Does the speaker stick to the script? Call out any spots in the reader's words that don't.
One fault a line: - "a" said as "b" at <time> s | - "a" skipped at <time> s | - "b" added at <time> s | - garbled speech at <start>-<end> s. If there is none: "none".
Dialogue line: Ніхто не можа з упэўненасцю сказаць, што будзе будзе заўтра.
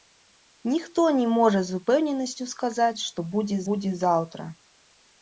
none